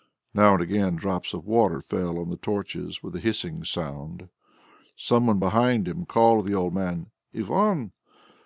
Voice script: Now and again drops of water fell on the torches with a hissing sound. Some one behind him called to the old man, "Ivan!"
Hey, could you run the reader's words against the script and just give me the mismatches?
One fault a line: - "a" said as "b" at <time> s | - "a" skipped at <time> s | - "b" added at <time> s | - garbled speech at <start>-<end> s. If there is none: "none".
none